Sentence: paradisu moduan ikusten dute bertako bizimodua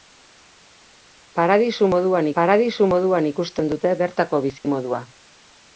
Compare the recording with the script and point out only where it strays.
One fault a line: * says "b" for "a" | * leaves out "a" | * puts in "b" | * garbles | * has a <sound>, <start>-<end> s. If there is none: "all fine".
* puts in "paradisu moduan"
* has a dropout, 4.6-4.6 s